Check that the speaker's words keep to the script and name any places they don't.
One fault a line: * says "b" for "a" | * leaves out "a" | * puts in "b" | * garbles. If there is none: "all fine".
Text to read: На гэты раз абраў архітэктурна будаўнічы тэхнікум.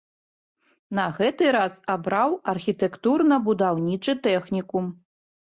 all fine